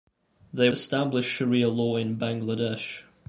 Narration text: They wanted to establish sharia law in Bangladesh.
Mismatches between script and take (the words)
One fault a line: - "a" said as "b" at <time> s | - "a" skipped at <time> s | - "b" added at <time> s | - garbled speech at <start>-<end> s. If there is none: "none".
- "wanted to" skipped at 0.7 s